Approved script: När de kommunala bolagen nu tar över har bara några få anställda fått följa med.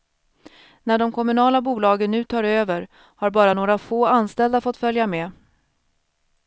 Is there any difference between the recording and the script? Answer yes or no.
no